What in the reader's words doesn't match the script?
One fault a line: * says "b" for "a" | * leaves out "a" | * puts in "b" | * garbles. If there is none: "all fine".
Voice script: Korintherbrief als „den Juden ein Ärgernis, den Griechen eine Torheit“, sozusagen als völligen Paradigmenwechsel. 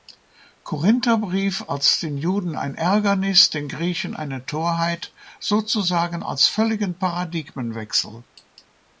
all fine